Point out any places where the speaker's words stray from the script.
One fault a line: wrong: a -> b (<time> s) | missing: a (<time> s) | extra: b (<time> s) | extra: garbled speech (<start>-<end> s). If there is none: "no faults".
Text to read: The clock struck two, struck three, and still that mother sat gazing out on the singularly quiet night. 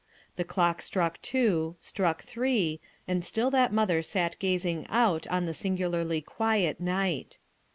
no faults